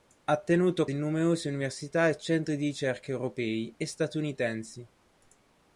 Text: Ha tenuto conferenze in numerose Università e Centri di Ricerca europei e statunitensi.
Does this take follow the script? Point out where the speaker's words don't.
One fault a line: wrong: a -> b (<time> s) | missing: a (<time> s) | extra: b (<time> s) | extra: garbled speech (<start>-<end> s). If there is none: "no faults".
missing: conferenze (0.9 s)